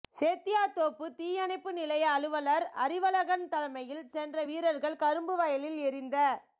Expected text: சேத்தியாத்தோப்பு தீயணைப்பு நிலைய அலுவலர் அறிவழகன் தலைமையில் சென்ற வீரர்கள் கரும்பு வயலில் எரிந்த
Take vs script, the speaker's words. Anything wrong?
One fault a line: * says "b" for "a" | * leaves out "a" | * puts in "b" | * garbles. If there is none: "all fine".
all fine